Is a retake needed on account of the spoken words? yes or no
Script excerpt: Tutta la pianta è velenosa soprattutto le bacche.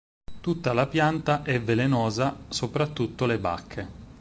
no